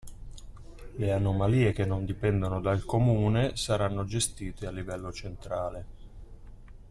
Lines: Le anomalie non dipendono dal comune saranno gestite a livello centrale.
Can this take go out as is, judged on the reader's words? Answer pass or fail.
fail